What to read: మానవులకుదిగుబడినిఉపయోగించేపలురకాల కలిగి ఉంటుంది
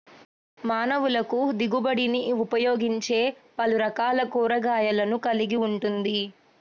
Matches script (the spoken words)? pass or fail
fail